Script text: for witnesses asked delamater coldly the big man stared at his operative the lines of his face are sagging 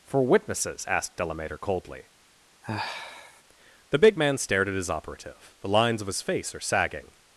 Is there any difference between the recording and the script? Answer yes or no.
no